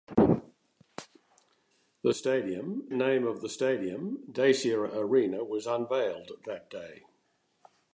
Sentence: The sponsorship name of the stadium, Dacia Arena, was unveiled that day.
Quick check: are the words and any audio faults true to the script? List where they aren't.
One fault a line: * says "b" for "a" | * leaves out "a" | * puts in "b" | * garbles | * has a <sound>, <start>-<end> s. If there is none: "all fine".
* says "stadium" for "sponsorship"